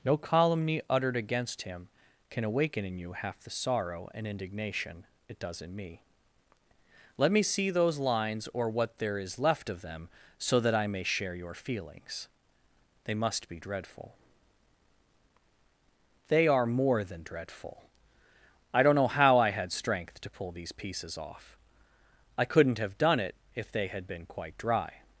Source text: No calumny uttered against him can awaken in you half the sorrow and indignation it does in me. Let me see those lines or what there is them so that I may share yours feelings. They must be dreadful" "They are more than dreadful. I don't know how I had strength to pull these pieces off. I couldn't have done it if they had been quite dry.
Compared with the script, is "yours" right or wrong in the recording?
wrong